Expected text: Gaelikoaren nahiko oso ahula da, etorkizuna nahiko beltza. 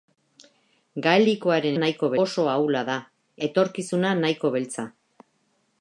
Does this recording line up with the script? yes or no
yes